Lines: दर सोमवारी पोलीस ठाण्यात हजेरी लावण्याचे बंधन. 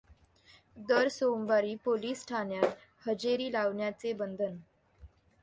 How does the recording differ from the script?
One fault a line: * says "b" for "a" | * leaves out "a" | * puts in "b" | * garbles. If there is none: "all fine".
all fine